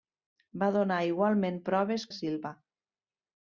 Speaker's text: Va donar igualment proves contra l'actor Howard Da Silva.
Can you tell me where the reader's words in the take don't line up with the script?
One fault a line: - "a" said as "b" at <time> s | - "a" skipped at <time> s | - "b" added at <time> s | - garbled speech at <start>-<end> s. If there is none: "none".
- "contra l'actor Howard" skipped at 2.1 s